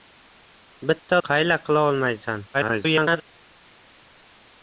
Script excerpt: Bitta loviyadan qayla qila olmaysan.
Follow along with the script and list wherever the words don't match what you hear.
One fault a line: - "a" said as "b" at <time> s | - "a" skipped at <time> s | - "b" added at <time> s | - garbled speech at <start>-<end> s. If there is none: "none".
- "loviyadan" skipped at 1.2 s
- garbled speech at 2.5-3.2 s